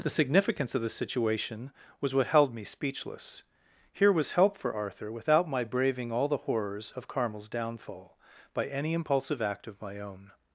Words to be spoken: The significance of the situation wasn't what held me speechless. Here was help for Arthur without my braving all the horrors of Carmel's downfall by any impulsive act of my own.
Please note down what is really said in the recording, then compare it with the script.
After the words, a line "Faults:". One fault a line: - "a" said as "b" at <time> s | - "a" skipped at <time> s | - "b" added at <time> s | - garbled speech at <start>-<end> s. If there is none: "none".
The significance of the situation was what held me speechless. Here was help for Arthur without my braving all the horrors of Carmel's downfall by any impulsive act of my own.
Faults:
- "wasn't" said as "was" at 2.0 s